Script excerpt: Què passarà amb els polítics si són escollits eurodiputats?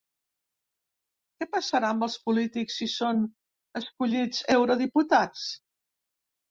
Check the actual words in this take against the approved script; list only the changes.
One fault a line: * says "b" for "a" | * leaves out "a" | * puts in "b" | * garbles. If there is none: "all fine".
all fine